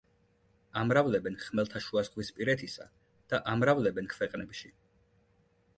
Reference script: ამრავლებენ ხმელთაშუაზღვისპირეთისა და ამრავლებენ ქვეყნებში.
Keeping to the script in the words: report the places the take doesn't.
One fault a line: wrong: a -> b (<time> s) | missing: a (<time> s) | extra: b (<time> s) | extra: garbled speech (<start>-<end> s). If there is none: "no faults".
no faults